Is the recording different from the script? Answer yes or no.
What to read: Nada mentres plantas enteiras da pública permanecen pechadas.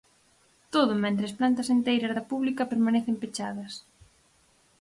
yes